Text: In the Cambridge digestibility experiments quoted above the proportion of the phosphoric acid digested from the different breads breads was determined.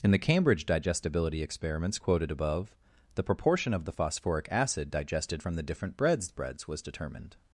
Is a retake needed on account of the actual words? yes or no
no